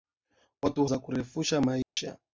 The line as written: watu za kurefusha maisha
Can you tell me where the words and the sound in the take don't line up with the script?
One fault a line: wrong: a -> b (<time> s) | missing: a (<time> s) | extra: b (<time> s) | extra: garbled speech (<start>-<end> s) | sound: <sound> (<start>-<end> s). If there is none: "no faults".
sound: dropout (1.8-2.0 s)